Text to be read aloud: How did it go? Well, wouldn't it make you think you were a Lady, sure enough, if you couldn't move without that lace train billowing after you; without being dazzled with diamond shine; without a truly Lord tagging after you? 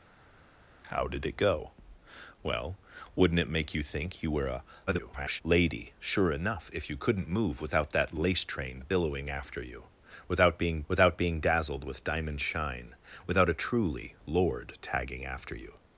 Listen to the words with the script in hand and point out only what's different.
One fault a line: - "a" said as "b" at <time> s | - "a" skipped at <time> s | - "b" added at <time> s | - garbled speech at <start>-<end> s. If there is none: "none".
- garbled speech at 4.9-5.4 s
- "without being" added at 10.9 s